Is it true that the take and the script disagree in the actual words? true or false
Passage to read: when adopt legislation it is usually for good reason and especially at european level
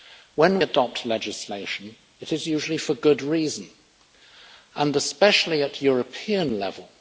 false